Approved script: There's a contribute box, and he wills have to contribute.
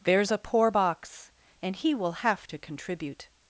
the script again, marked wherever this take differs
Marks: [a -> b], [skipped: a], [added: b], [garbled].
There's a [contribute -> poor] box, and he [wills -> will] have to contribute.